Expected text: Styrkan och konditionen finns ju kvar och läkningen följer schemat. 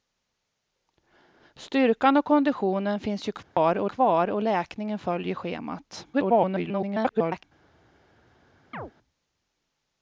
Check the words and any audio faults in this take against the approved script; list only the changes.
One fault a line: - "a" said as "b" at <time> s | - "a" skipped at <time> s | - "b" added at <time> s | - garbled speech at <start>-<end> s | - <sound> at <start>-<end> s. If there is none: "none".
- dropout at 3.4-3.6 s
- "kvar och" added at 3.8 s
- garbled speech at 6.1-7.4 s
- chirp at 8.7-8.9 s